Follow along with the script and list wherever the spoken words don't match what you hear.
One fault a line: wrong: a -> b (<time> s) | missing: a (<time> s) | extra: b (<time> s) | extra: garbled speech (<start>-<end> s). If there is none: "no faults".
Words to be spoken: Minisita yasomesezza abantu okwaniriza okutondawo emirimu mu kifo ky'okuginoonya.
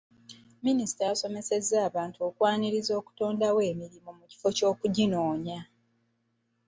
no faults